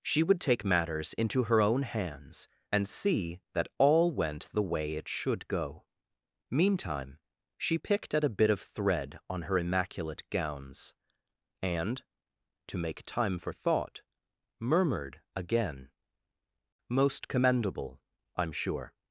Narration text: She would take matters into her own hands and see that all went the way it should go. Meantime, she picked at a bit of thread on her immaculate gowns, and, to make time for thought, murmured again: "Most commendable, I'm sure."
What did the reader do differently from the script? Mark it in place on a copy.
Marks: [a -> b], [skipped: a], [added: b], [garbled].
She would take matters into her own hands and see that all went the way it should go. Meantime, she picked at a bit of thread on her immaculate gowns, and, to make time for thought, murmured again: "Most commendable, I'm sure."